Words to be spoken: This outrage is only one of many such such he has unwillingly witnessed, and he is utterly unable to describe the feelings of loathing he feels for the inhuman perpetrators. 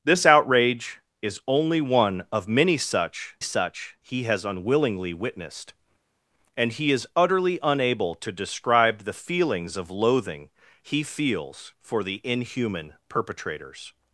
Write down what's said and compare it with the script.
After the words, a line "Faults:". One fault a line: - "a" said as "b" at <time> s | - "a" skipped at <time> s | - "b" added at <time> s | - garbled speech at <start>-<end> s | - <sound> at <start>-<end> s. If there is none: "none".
This outrage is only one of many such such he has unwillingly witnessed, and he is utterly unable to describe the feelings of loathing he feels for the inhuman perpetrators.
Faults:
none